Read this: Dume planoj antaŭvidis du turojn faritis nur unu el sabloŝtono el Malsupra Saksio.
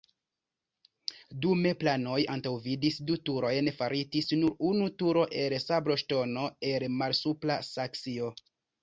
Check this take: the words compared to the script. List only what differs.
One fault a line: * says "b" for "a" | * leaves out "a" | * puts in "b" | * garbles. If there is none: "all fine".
* puts in "turo"